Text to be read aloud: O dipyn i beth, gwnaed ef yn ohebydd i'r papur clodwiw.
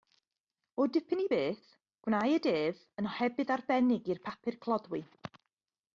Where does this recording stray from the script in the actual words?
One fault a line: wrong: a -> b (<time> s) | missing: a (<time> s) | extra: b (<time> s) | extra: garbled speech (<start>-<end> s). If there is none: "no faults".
extra: arbennig (3.6 s)